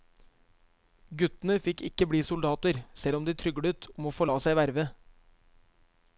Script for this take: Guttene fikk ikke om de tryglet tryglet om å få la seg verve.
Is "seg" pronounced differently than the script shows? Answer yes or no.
no